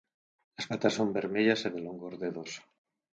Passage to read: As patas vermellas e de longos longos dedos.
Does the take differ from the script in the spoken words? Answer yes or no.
yes